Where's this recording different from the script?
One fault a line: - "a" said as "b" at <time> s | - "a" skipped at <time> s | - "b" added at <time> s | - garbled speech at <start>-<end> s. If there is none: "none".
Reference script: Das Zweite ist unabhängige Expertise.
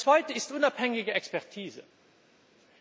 none